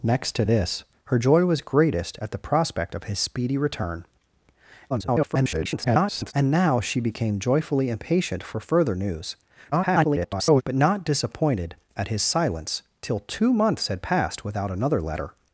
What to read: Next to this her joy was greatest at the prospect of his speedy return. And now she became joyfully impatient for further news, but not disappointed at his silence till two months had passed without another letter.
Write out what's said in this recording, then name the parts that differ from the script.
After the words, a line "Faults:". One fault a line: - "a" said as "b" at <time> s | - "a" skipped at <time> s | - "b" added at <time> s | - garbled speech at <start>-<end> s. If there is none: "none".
Next to this her joy was greatest at the prospect of his speedy return. [garbled] And now she became joyfully impatient for further news, [garbled] but not disappointed at his silence till two months had passed without another letter.
Faults:
- garbled speech at 4.9-6.3 s
- garbled speech at 9.7-10.6 s